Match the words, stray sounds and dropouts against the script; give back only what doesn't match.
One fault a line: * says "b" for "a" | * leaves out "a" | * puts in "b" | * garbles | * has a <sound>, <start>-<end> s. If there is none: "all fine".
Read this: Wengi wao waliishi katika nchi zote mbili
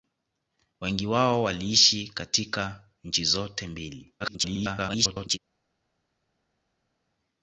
* garbles